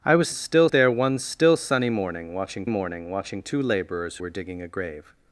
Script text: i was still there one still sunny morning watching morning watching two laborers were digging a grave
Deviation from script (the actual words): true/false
false